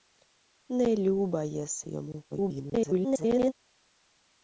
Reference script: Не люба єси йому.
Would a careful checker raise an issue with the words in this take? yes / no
yes